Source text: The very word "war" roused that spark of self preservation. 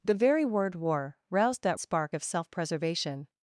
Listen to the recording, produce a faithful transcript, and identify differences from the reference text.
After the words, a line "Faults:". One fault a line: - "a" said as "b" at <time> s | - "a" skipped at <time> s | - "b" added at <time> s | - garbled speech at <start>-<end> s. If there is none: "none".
The very word "war" roused that spark of self preservation.
Faults:
none